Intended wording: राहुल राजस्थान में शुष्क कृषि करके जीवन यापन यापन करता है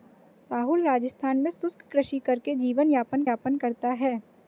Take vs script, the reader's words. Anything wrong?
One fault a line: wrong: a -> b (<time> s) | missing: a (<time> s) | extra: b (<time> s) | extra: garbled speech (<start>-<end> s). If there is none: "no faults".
no faults